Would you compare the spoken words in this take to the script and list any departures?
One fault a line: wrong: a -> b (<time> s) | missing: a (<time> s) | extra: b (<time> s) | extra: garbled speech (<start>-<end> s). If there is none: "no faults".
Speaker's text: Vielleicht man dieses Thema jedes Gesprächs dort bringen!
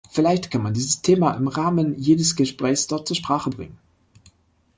extra: kann (0.5 s)
extra: im Rahmen (1.3 s)
extra: zur Sprache (3.1 s)